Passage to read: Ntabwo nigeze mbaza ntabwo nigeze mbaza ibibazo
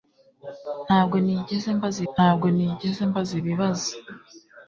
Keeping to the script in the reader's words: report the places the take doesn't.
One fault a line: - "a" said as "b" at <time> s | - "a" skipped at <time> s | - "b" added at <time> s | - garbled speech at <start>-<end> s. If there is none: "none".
none